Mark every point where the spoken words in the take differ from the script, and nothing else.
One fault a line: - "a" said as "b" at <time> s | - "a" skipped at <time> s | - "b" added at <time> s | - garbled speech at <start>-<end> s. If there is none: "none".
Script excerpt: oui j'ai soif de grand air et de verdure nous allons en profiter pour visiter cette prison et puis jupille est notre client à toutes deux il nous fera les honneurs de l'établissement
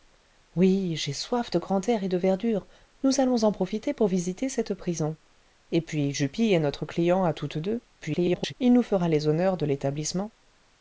- garbled speech at 8.0-8.5 s